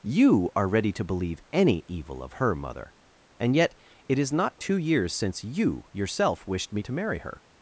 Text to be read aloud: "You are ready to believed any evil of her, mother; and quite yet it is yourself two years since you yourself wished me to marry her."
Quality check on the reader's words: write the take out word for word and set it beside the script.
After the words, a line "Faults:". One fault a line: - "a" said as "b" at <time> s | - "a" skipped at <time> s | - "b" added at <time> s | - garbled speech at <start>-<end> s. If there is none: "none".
"You are ready to believe any evil of her, mother; and yet it is not two years since you yourself wished me to marry her."
Faults:
- "believed" said as "believe" at 1.0 s
- "quite" skipped at 3.5 s
- "yourself" said as "not" at 4.3 s